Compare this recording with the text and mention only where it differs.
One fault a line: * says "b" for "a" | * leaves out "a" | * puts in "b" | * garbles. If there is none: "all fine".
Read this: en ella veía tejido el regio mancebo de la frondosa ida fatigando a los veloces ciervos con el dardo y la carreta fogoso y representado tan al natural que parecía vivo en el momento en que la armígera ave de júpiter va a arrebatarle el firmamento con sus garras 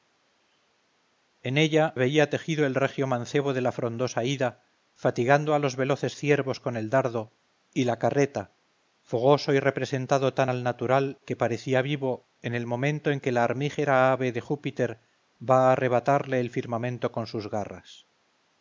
all fine